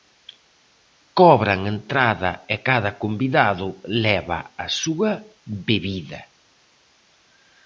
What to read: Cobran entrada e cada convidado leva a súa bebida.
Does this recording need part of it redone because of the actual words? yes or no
no